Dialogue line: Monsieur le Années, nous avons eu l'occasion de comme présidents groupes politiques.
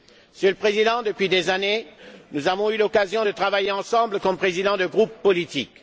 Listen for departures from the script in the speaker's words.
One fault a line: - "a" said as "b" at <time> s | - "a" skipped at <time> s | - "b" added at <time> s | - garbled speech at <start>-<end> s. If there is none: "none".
- "Président depuis des" added at 0.6 s
- "travailler ensemble" added at 3.3 s
- "de" added at 4.8 s